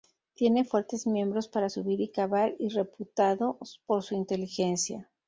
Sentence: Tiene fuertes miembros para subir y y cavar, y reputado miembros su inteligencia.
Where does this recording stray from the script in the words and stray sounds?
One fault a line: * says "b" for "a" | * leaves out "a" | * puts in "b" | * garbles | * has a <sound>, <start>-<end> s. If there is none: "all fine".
* leaves out "y"
* says "por" for "miembros"